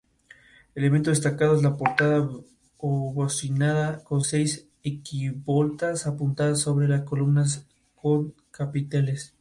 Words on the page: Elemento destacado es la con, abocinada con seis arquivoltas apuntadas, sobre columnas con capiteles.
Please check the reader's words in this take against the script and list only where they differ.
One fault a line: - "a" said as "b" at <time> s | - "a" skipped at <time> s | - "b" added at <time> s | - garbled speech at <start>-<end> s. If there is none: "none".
- "con" said as "portada" at 1.8 s